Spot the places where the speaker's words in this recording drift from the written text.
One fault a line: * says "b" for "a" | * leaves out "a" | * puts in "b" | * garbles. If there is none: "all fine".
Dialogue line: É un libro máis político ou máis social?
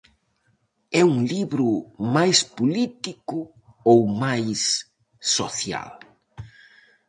all fine